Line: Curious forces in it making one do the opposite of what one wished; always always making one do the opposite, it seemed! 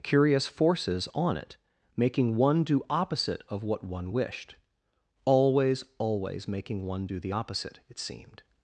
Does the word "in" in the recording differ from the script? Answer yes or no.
yes